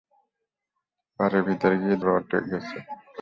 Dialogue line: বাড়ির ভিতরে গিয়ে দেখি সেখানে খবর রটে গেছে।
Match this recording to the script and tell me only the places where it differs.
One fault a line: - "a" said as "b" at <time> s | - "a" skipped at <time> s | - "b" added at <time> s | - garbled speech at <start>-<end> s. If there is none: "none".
- "দেখি সেখানে খবর" skipped at 2.0 s